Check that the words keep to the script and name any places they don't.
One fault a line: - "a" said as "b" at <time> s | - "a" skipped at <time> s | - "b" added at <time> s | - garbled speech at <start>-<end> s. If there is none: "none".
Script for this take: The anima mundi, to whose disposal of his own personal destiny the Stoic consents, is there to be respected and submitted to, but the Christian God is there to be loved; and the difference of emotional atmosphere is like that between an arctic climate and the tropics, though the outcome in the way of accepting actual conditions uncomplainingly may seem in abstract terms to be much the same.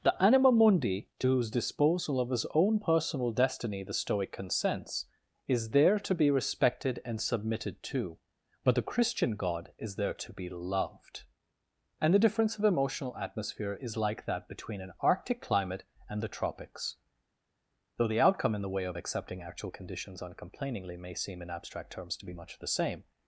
none